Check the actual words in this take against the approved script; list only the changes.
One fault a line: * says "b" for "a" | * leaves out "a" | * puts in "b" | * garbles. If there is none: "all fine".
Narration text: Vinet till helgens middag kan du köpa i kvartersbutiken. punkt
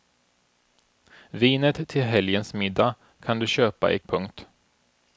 * leaves out "kvartersbutiken"